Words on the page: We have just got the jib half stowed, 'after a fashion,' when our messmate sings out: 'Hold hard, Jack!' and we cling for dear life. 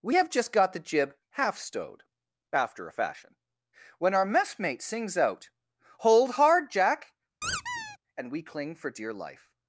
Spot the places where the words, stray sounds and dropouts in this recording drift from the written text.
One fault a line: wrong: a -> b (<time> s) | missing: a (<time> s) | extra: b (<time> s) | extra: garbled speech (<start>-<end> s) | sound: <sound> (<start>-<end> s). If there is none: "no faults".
sound: squeak (7.4-8.0 s)